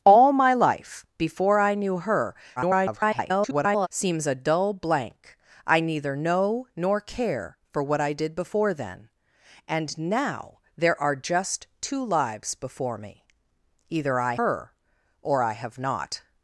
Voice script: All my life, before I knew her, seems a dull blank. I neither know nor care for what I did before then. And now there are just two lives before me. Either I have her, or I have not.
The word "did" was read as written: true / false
true